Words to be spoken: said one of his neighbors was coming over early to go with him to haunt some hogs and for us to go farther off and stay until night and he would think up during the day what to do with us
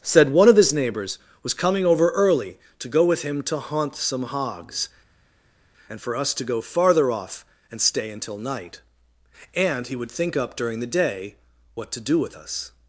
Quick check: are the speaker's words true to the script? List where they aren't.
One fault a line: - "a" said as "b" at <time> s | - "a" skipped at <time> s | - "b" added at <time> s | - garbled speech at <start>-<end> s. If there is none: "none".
none